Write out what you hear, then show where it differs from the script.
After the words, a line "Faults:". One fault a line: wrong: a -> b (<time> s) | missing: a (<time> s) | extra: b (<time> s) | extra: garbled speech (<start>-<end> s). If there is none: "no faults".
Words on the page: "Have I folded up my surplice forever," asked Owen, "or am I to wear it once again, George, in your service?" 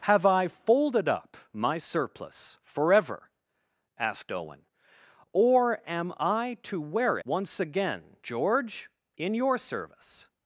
"Have I folded up my surplice forever," asked Owen, "or am I to wear once again, George, in your service?"
Faults:
missing: it (7.2 s)